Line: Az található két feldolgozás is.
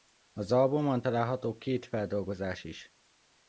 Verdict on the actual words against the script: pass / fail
fail